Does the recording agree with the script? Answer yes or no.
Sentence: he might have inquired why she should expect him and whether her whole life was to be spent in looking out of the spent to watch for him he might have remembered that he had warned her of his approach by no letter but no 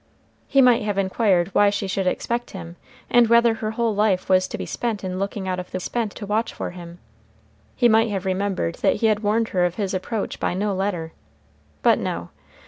yes